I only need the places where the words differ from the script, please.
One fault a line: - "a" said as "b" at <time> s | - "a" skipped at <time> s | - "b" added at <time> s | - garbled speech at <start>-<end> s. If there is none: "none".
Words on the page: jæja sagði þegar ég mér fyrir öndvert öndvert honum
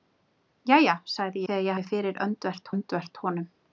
none